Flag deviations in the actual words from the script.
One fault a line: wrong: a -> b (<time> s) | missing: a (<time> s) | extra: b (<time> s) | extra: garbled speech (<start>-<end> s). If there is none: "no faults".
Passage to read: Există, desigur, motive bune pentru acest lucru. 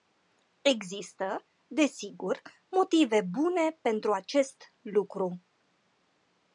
no faults